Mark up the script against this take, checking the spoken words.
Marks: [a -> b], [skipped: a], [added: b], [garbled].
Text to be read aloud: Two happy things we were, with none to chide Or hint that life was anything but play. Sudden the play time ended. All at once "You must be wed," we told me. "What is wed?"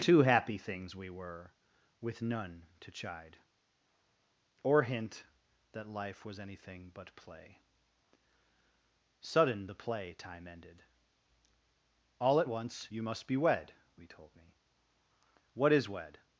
Two happy things we were, with none to chide Or hint that life was anything but play. Sudden the play time ended. All at once "You must be wed," we told me. "What is wed?"